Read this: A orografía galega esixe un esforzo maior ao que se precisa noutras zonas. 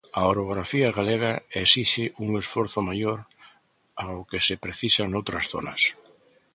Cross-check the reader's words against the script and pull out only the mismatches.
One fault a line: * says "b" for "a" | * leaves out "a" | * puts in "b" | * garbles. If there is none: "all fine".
all fine